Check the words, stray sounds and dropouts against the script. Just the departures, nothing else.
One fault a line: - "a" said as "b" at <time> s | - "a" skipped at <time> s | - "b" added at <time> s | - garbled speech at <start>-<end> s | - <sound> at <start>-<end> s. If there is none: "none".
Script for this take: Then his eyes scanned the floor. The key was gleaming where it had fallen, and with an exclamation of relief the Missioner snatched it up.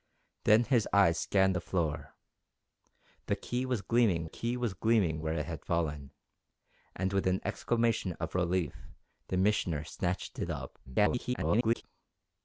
- "key was gleaming" added at 4.2 s
- garbled speech at 10.9-11.8 s